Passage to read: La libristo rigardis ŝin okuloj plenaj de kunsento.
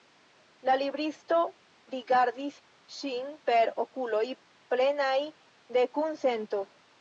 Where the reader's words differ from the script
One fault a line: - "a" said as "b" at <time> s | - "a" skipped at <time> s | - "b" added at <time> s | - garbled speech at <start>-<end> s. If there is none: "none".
- "per" added at 3.5 s